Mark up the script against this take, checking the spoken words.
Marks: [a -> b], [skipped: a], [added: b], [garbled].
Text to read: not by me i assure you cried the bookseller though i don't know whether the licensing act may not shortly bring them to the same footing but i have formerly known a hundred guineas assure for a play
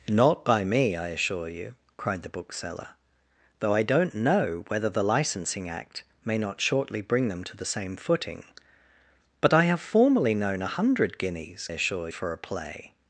not by me i assure you cried the bookseller though i don't know whether the licensing act may not shortly bring them to the same footing but i have formerly known a hundred guineas assure for a play